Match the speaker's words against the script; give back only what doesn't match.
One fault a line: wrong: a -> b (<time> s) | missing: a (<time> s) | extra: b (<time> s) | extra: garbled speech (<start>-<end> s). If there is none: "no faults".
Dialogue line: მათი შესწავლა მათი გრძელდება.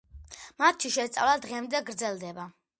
wrong: მათი -> დღემდე (1.4 s)